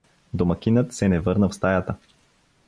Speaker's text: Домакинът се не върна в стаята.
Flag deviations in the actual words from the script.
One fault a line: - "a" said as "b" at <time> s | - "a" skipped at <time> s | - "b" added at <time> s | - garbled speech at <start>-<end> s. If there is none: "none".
none